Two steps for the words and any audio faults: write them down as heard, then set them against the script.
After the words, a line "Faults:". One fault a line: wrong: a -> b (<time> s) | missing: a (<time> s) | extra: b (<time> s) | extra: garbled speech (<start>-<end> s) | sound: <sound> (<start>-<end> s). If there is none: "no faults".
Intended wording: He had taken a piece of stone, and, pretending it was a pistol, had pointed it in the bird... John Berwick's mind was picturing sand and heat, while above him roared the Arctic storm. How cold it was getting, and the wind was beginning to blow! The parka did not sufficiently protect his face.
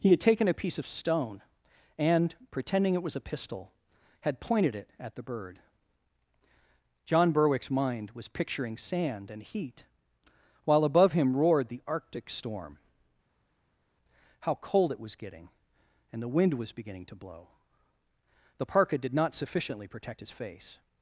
He had taken a piece of stone, and, pretending it was a pistol, had pointed it at the bird... John Berwick's mind was picturing sand and heat, while above him roared the Arctic storm. How cold it was getting, and the wind was beginning to blow! The parka did not sufficiently protect his face.
Faults:
wrong: in -> at (5.0 s)